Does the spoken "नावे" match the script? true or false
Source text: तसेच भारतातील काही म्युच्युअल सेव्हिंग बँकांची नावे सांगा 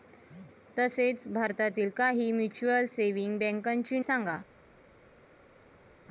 false